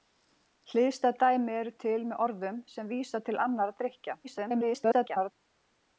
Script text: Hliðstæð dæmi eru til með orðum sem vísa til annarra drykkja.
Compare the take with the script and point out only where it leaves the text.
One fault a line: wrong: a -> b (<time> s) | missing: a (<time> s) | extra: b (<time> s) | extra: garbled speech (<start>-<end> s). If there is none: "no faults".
extra: garbled speech (4.2-5.3 s)